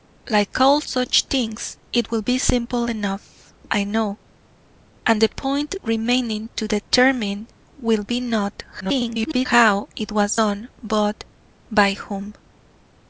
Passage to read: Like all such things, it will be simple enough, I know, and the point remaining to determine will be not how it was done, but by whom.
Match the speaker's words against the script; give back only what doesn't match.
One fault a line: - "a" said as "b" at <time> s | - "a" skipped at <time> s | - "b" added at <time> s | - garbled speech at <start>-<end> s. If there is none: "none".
- garbled speech at 8.8-9.5 s